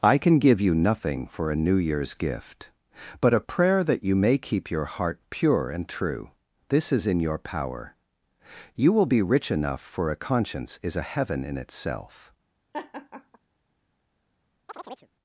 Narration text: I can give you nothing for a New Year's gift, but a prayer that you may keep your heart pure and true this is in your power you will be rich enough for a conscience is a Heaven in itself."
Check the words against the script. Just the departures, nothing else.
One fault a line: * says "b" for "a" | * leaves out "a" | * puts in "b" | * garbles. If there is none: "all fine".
all fine